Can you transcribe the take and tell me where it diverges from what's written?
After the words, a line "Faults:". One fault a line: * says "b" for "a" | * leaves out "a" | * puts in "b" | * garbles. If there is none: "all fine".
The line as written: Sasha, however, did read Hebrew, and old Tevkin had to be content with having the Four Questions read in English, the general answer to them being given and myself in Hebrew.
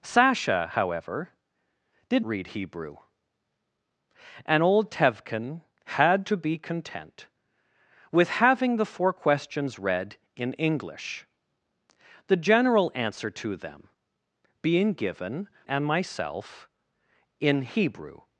Sasha, however, did read Hebrew, and old Tevkin had to be content with having the Four Questions read in English, the general answer to them being given and myself in Hebrew.
Faults:
all fine